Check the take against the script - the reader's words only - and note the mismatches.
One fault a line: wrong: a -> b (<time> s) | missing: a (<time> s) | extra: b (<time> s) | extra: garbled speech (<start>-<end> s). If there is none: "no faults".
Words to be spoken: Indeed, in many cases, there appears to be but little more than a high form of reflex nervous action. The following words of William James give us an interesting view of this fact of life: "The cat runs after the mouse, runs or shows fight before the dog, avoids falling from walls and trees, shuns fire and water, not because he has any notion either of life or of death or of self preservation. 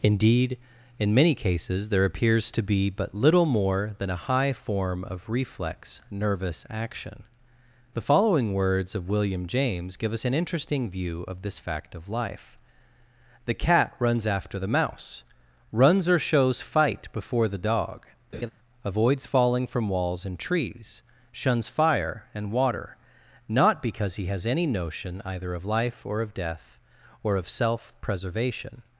no faults